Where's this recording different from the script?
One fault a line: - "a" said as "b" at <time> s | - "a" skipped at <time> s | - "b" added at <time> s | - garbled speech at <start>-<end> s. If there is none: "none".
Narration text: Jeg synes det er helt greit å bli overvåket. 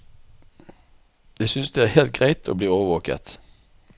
none